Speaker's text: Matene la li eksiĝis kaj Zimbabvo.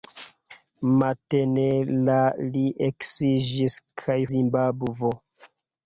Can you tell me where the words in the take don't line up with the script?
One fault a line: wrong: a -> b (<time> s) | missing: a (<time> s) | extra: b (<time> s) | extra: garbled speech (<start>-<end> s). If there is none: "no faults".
no faults